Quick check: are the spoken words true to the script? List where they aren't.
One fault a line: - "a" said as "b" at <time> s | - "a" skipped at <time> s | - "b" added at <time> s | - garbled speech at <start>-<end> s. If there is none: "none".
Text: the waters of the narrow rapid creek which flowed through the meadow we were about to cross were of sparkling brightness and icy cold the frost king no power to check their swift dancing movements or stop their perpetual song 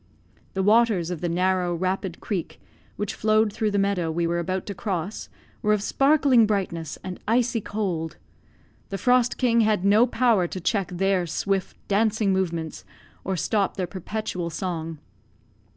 - "had" added at 9.6 s